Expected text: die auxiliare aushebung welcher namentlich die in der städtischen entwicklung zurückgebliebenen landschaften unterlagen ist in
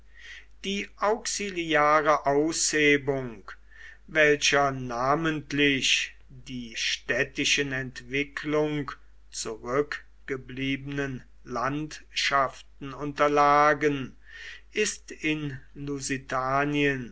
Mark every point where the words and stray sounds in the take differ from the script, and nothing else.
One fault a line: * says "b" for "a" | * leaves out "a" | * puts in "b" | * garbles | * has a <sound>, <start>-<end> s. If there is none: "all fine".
* leaves out "in der"